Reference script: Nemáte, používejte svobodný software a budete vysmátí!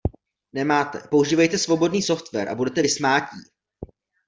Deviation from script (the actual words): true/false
false